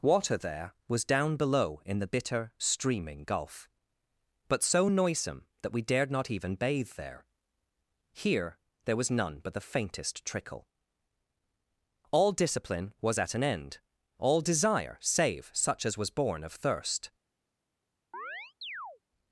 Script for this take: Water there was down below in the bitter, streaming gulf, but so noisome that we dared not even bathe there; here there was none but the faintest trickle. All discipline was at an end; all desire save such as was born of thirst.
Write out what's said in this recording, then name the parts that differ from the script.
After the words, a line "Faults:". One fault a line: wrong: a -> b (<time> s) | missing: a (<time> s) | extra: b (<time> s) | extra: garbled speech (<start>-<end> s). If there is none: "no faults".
Water there was down below in the bitter, streaming gulf, but so noisome that we dared not even bathe there; here there was none but the faintest trickle. All discipline was at an end; all desire save such as was born of thirst.
Faults:
no faults